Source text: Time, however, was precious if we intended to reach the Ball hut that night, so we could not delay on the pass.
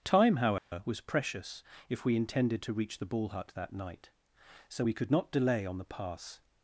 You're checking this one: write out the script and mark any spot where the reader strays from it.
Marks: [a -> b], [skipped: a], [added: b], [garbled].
Time, however, was precious if we intended to reach the Ball hut that night, so we could not delay on the pass.